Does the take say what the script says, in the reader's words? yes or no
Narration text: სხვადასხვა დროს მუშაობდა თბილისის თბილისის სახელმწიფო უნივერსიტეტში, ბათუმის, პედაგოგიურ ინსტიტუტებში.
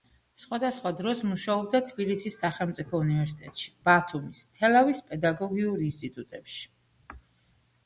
no